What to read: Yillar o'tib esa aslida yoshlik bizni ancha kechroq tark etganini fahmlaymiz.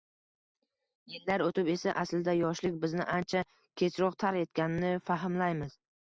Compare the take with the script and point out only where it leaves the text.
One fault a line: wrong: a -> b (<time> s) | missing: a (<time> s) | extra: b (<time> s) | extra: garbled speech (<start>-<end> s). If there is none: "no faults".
no faults